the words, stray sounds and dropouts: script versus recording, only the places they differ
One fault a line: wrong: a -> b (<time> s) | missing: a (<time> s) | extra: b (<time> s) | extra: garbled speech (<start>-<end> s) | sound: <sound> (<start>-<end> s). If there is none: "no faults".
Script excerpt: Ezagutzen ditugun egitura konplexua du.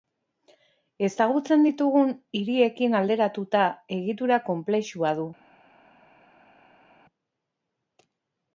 extra: hiriekin alderatuta (2.4 s)